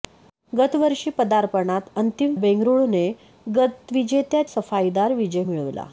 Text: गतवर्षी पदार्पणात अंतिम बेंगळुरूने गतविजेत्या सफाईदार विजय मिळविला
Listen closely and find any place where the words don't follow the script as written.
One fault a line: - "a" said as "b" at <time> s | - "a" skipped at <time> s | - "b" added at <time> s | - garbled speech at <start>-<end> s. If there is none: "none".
none